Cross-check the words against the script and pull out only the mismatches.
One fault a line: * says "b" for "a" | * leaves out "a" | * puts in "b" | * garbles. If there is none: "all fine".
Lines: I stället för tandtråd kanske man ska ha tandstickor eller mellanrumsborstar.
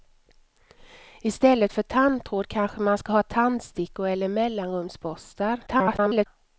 * garbles